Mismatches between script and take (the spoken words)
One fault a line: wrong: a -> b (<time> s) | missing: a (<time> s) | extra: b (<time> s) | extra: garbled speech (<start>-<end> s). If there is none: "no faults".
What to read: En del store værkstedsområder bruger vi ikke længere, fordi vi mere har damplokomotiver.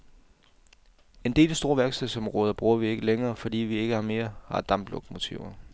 extra: ikke (3.8 s)